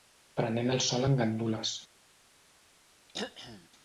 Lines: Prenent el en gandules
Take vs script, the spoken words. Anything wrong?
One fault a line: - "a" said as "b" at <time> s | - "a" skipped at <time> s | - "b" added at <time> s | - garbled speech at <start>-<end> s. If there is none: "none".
- "sol" added at 0.9 s